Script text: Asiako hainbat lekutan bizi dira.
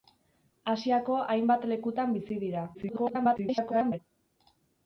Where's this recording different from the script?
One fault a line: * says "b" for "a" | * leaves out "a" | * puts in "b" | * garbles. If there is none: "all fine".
* garbles